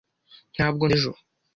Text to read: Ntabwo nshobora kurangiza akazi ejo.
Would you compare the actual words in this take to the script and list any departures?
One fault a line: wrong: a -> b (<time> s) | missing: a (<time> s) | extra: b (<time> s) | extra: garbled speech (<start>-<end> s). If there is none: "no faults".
missing: nshobora kurangiza akazi (0.8 s)